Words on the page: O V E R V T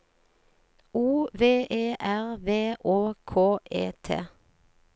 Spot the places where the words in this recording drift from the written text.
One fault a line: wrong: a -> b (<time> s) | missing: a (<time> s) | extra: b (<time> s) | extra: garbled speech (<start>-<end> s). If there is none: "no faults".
extra: Å K E (2.8 s)